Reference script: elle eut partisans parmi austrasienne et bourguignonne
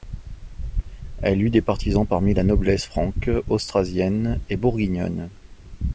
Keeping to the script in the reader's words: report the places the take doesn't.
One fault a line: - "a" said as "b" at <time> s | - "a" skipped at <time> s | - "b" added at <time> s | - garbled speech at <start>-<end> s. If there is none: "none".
- "des" added at 1.5 s
- "la noblesse franque" added at 2.3 s